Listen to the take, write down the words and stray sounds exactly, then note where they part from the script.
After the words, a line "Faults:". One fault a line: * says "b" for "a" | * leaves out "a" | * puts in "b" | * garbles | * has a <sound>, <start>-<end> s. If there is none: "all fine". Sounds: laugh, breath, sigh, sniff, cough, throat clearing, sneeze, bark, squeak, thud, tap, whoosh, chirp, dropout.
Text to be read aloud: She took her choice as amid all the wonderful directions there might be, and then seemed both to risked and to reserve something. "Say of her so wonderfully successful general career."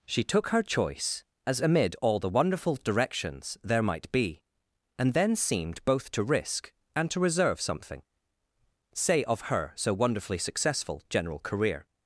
She took her choice as amid all the wonderful directions there might be, and then seemed both to risk and to reserve something. "Say of her so wonderfully successful general career."
Faults:
* says "risk" for "risked"